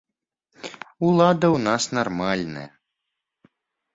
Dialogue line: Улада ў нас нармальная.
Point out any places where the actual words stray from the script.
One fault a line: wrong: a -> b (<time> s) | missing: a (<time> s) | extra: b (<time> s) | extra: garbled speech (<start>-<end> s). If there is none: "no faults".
no faults